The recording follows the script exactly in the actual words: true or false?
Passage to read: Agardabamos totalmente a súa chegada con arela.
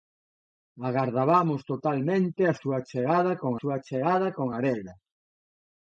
false